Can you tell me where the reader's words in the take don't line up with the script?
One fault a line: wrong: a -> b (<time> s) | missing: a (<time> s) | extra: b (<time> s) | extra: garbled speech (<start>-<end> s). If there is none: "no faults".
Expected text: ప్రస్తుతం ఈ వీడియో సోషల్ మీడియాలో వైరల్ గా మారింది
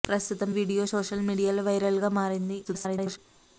missing: ఈ (0.5 s)
extra: garbled speech (2.6-3.2 s)